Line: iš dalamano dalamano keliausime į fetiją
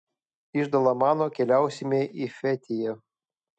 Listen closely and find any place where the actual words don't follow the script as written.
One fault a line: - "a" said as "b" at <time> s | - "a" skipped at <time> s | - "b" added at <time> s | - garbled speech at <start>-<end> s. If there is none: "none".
- "dalamano" skipped at 1.3 s